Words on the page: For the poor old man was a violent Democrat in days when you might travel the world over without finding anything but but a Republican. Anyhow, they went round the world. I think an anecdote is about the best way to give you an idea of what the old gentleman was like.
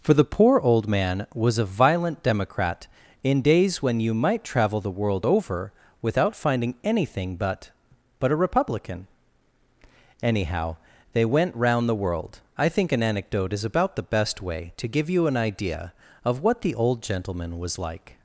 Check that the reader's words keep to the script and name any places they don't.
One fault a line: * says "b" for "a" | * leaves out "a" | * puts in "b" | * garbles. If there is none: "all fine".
all fine